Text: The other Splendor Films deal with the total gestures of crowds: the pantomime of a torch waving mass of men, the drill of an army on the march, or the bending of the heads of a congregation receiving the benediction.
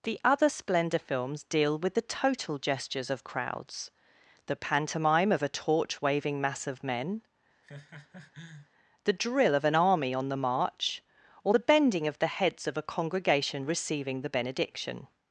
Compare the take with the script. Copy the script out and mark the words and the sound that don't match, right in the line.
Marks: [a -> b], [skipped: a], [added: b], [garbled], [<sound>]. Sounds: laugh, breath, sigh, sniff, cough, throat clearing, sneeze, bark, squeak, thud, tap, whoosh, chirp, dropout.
The other Splendor Films deal with the total gestures of crowds: the pantomime of a torch waving mass of men, [laugh] the drill of an army on the march, or the bending of the heads of a congregation receiving the benediction.